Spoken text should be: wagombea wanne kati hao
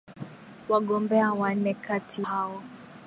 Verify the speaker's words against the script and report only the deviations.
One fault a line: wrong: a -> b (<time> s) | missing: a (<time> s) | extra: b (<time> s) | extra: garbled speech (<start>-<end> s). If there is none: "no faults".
no faults